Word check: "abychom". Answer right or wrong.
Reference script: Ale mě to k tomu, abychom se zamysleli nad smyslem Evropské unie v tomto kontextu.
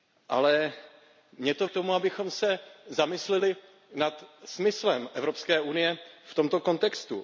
right